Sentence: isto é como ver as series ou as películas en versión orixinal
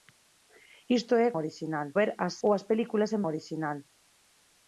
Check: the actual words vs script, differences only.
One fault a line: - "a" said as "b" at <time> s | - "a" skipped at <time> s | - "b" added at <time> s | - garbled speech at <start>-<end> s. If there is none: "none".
- "como" said as "orixinal" at 1.4 s
- "series" skipped at 2.3 s
- "versión" skipped at 3.2 s